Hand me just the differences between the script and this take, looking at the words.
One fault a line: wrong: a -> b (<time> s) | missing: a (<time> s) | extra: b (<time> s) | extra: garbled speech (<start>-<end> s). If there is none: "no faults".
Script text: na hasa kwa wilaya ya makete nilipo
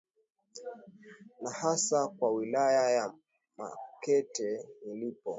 no faults